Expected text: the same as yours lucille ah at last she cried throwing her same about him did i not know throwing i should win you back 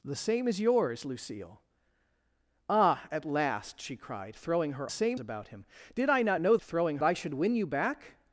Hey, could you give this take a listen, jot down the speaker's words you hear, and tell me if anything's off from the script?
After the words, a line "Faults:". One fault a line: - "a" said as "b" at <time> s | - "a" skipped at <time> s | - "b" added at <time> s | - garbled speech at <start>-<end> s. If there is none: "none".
the same as yours lucille ah at last she cried throwing her same about him did i not know throwing i should win you back
Faults:
none